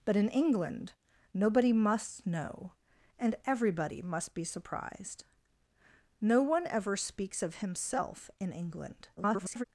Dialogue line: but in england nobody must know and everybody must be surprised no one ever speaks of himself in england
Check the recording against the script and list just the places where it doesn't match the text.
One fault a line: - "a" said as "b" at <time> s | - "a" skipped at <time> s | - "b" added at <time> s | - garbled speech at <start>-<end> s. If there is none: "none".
- garbled speech at 9.2-9.6 s